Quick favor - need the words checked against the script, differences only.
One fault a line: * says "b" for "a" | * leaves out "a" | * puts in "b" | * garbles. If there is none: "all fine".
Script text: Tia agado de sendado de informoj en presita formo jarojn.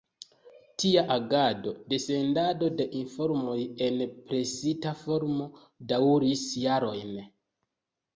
* puts in "daŭris"